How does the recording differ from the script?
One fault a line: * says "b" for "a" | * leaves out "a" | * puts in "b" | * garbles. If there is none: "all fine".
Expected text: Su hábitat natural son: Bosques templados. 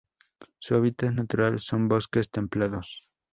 all fine